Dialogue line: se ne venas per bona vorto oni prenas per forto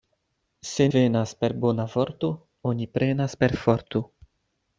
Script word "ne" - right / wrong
wrong